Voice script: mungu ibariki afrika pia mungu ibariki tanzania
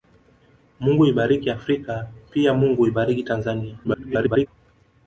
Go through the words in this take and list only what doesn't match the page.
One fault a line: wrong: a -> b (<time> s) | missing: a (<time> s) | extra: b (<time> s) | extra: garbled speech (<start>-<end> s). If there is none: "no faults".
extra: garbled speech (3.8-4.5 s)